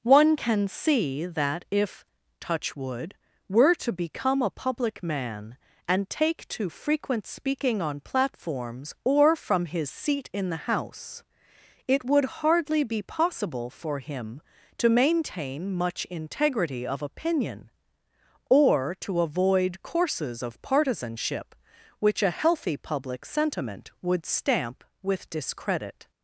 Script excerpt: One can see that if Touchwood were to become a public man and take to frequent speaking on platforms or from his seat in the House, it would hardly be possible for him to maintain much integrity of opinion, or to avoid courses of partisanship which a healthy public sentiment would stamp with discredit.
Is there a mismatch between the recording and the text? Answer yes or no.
no